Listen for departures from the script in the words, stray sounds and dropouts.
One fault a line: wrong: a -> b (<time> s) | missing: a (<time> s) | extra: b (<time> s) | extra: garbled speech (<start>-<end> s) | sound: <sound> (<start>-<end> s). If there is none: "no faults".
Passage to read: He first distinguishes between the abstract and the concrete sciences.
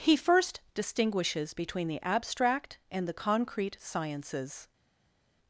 no faults